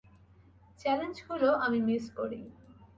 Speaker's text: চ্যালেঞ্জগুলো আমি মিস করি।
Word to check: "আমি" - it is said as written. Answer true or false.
true